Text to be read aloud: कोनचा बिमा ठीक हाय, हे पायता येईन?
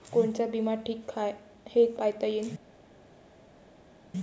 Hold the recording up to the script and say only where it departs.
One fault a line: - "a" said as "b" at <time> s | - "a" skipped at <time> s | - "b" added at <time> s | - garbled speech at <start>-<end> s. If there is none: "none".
none